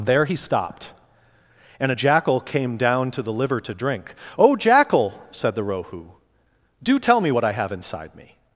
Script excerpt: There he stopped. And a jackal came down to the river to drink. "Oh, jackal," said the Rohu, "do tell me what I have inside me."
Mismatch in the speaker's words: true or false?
true